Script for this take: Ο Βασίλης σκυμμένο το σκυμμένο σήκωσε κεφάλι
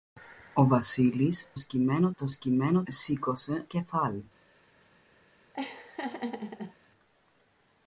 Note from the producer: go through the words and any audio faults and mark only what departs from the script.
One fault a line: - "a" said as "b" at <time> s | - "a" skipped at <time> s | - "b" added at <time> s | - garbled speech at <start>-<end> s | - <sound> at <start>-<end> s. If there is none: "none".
- laugh at 5.5-6.7 s